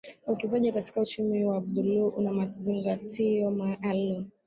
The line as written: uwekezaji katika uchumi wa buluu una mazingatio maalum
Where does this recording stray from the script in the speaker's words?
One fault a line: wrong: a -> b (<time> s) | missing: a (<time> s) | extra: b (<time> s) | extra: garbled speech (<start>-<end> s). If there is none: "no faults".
no faults